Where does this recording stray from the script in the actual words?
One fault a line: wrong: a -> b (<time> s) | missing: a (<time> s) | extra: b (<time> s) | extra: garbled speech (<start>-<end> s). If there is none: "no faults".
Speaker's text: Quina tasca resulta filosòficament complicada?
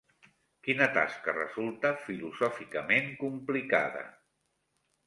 no faults